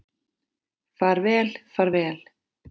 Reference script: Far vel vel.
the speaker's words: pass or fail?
fail